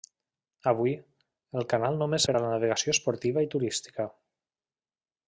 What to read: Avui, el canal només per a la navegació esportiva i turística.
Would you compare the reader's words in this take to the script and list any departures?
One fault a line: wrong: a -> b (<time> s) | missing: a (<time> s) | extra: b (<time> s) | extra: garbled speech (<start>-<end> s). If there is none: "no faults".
no faults